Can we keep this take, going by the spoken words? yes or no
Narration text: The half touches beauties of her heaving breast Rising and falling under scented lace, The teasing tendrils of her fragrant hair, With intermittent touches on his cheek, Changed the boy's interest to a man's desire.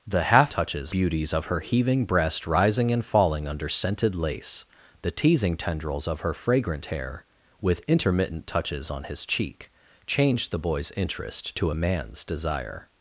yes